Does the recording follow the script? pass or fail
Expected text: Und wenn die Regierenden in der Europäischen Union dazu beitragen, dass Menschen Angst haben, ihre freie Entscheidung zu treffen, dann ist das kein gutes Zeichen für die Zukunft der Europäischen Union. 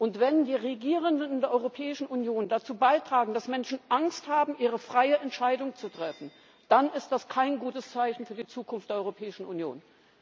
pass